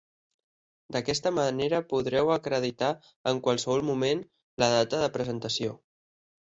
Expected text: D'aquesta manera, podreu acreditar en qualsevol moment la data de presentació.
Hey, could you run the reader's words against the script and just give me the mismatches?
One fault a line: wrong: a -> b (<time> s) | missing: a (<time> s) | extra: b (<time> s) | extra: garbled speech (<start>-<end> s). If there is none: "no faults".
no faults